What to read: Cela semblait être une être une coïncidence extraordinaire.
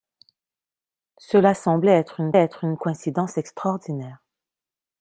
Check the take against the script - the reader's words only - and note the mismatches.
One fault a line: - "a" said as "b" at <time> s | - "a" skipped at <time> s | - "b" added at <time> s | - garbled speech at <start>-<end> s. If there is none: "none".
none